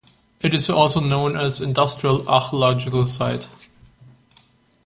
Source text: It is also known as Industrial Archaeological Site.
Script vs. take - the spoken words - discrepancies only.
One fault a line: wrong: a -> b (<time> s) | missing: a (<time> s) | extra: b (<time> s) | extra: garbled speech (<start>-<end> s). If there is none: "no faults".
no faults